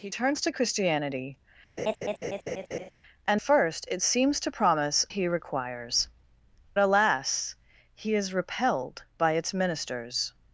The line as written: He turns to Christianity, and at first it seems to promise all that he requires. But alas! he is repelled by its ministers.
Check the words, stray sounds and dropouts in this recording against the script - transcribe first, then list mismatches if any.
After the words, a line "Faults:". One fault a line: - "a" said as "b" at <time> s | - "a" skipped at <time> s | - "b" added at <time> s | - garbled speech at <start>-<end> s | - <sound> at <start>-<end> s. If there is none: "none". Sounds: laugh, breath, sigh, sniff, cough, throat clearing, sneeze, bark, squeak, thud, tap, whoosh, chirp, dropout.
He turns to Christianity, and first it seems to promise he requires. Alas! he is repelled by its ministers.
Faults:
- laugh at 1.8-2.9 s
- "at" skipped at 3.4 s
- "all that" skipped at 5.0 s
- "But" skipped at 6.1 s